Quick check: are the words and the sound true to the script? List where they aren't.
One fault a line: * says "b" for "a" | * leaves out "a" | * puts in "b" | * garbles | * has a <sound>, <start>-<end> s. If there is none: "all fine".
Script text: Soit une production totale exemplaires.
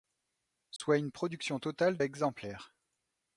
* has a dropout, 0.8-0.8 s